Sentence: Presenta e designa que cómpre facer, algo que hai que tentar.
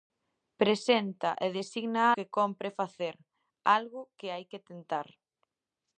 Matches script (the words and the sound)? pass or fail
pass